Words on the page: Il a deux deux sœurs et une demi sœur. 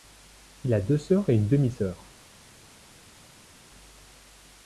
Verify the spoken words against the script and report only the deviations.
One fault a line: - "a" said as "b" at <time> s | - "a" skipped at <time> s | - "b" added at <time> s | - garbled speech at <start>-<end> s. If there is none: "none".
- "deux" skipped at 1.0 s